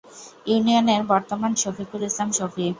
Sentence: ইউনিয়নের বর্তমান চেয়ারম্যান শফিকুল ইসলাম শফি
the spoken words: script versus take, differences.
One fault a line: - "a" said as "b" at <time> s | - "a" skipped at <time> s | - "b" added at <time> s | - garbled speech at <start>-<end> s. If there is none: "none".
- "চেয়ারম্যান" skipped at 1.5 s